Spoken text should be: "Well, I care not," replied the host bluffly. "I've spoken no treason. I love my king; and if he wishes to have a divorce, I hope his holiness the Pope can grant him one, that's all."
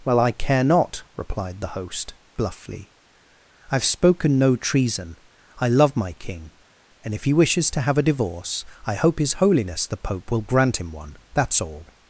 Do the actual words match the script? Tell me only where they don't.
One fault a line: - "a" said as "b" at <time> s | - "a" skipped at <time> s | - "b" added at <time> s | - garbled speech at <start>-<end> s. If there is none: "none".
- "can" said as "will" at 10.3 s